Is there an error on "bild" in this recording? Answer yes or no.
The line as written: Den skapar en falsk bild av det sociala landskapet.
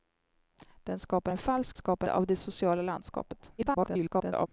yes